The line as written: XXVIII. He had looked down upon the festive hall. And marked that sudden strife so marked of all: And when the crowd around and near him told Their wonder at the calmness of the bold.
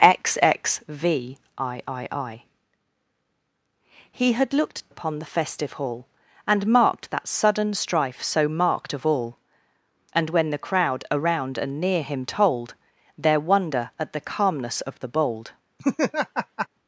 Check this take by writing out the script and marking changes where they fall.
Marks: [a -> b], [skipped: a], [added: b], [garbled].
XXVIII. He had looked [skipped: down] upon the festive hall. And marked that sudden strife so marked of all: And when the crowd around and near him told Their wonder at the calmness of the bold.